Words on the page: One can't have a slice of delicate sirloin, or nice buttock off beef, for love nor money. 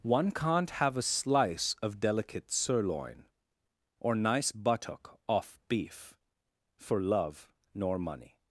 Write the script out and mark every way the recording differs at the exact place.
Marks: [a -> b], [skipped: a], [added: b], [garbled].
One can't have a slice of delicate sirloin, or nice buttock off beef, for love nor money.